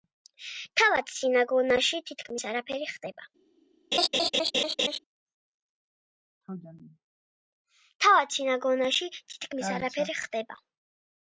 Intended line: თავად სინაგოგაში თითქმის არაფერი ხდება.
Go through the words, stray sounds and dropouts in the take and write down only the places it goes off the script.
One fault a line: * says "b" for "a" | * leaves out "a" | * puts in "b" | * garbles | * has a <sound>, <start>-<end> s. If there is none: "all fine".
* has a laugh, 3.9-5.0 s